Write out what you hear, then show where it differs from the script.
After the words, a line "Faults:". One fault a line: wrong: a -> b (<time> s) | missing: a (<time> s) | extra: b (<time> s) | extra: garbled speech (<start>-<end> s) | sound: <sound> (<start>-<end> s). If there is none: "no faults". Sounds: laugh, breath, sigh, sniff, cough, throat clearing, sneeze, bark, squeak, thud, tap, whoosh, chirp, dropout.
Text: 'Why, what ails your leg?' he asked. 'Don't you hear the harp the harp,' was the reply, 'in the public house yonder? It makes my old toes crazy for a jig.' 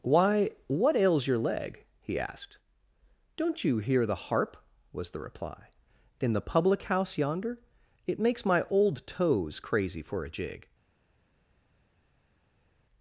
'Why, what ails your leg?' he asked. 'Don't you hear the harp,' was the reply, 'in the public house yonder? It makes my old toes crazy for a jig.'
Faults:
missing: the harp (4.6 s)